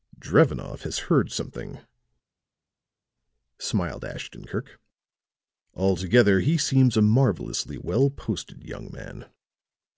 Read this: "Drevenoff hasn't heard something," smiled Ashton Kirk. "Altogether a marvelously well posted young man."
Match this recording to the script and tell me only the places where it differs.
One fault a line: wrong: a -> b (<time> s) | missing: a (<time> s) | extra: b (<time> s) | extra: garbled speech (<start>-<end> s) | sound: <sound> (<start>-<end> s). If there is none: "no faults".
wrong: hasn't -> has (0.8 s)
extra: he seems (6.4 s)